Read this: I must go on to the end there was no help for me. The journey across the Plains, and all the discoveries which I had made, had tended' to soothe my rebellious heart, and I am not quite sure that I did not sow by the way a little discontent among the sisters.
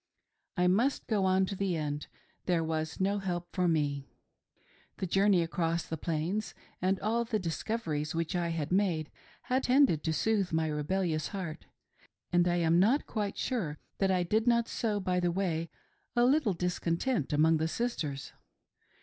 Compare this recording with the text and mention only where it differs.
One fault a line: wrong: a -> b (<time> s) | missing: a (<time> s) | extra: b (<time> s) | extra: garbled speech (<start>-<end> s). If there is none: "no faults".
no faults